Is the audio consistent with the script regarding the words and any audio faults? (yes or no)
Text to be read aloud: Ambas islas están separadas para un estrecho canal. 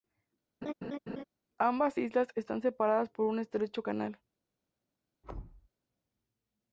no